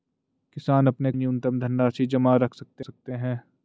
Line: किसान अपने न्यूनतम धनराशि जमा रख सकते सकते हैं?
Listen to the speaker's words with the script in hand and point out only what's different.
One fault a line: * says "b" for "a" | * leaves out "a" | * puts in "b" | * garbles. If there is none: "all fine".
all fine